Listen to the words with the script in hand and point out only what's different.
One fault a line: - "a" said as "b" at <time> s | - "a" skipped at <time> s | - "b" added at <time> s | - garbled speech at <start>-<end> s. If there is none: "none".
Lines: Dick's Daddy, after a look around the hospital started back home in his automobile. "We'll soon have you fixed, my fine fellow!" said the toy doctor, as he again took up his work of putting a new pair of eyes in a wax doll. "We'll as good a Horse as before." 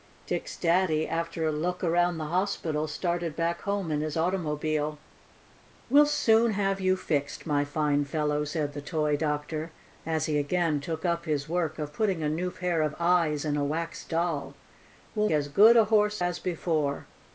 none